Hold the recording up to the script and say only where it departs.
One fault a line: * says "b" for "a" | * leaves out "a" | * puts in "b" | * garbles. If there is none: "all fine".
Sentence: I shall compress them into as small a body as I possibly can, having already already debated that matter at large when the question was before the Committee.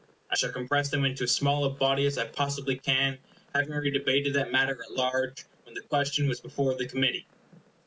* leaves out "already"